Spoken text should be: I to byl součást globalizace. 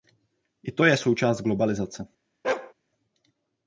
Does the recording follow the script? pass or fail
fail